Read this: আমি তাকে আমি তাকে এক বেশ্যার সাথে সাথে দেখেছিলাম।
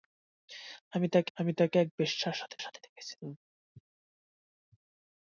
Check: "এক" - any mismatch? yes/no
no